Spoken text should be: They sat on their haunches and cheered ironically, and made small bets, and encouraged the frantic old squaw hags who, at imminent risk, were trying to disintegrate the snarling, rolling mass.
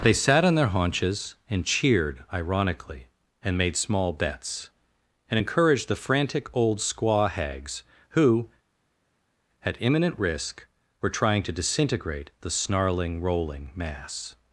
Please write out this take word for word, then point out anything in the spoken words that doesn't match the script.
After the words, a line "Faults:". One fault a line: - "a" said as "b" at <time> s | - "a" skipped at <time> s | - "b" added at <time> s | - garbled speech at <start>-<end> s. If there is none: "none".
They sat on their haunches and cheered ironically, and made small bets, and encouraged the frantic old squaw hags who, at imminent risk, were trying to disintegrate the snarling, rolling mass.
Faults:
none